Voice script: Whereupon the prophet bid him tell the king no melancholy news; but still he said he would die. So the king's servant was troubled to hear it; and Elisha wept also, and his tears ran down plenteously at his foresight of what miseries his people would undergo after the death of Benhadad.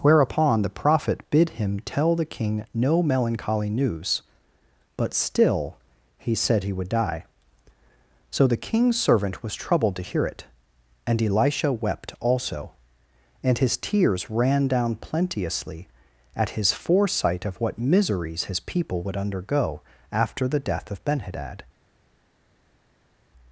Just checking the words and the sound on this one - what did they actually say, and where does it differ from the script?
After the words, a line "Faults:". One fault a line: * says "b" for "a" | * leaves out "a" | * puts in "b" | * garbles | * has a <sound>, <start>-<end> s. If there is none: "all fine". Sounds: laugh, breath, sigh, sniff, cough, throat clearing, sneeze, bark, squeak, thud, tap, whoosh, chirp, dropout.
Whereupon the prophet bid him tell the king no melancholy news; but still he said he would die. So the king's servant was troubled to hear it; and Elisha wept also, and his tears ran down plenteously at his foresight of what miseries his people would undergo after the death of Benhadad.
Faults:
all fine